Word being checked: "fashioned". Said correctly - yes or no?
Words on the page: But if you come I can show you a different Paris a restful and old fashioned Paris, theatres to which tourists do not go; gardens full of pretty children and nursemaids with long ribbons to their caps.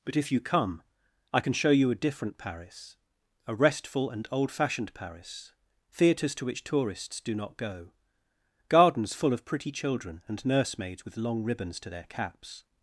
yes